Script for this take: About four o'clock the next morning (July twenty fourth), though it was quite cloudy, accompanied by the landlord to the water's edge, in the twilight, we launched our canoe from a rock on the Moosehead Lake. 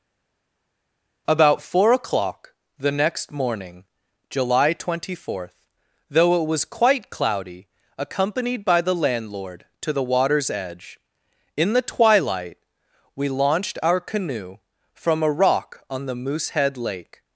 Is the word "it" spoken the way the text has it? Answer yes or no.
yes